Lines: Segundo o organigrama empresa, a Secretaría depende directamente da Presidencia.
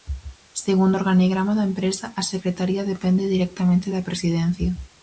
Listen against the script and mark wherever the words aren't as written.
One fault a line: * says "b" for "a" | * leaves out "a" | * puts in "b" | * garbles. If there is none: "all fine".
* puts in "da"